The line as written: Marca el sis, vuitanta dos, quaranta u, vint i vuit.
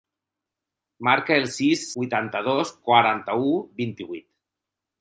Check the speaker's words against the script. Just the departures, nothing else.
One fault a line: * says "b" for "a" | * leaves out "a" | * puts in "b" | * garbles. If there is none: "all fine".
all fine